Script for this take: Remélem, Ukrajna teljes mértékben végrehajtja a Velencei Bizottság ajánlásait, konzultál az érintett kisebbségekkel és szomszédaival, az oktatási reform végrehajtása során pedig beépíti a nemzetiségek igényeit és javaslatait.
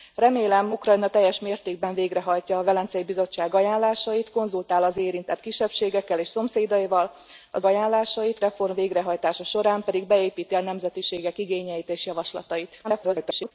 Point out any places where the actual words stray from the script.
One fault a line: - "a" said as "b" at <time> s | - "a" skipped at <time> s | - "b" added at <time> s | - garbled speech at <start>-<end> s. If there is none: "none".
- "oktatási" said as "ajánlásait" at 7.6 s
- garbled speech at 12.8-13.5 s